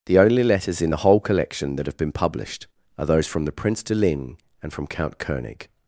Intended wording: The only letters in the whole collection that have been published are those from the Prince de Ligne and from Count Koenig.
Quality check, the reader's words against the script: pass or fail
pass